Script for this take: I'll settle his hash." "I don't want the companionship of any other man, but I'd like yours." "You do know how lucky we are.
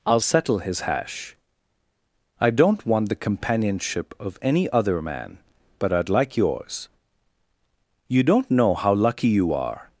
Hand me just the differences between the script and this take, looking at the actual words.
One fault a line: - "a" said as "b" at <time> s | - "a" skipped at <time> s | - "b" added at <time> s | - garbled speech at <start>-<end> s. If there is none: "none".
- "do" said as "don't" at 8.2 s
- "we" said as "you" at 9.3 s